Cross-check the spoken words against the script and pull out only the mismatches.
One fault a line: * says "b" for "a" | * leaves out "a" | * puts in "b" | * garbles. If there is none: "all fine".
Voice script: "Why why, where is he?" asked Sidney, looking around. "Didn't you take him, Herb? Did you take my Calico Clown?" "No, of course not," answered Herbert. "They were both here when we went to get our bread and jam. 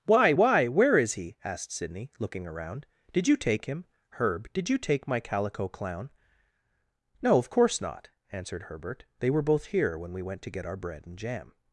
* says "Did" for "Didn't"